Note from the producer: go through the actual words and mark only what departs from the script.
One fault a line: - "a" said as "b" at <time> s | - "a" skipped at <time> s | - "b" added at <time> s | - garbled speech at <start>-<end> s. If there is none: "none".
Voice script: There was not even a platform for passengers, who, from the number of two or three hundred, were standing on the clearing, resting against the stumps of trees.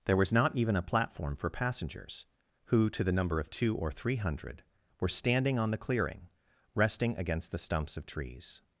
- "from" said as "to" at 2.9 s